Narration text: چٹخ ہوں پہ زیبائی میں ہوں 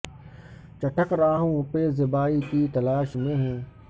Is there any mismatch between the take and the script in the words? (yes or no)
yes